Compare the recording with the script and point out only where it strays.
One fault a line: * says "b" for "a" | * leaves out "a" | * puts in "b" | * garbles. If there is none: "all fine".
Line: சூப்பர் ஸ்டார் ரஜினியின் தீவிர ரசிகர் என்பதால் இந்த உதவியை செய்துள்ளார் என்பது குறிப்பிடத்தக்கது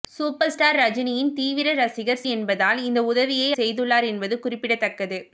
all fine